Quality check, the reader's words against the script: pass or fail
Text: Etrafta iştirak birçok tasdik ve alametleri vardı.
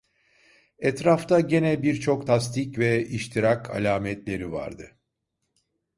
fail